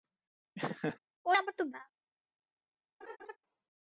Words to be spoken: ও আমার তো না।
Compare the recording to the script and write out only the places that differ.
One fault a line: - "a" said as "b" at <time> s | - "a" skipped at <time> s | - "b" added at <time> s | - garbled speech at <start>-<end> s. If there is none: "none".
none